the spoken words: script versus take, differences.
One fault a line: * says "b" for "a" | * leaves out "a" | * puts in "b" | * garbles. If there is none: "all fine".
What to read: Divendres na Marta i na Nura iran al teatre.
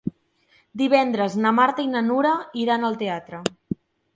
all fine